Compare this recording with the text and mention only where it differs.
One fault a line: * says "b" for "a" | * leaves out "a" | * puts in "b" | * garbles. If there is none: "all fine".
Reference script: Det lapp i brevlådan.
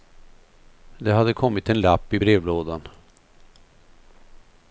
* puts in "hade kommit en"